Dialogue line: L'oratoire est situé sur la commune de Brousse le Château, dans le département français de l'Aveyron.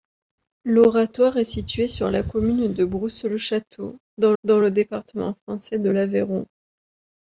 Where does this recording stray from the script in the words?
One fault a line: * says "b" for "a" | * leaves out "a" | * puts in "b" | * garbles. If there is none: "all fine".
* puts in "dans"